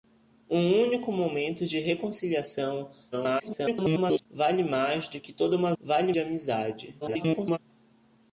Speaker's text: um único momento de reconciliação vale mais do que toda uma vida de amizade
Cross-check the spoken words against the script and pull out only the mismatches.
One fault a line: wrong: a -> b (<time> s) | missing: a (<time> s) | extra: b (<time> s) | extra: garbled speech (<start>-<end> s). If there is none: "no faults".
extra: garbled speech (3.1-4.3 s)
wrong: vida -> vale (5.8 s)
extra: garbled speech (7.0-7.6 s)